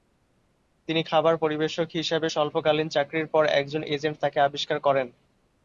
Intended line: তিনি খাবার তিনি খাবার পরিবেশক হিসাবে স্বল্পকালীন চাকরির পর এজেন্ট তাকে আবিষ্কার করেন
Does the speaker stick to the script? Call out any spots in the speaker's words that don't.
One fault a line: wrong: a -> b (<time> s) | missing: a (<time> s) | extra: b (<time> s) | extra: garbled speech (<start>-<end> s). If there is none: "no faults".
missing: তিনি খাবার (1.3 s)
extra: একজন (3.6 s)